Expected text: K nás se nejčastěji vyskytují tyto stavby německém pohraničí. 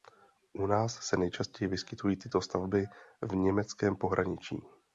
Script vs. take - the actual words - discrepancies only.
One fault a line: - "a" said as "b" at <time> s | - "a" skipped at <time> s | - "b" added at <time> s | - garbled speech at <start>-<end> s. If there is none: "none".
- "K" said as "U" at 0.5 s
- "v" added at 3.2 s